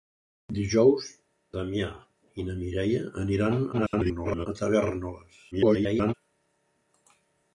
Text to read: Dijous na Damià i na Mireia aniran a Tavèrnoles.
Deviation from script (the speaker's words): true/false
true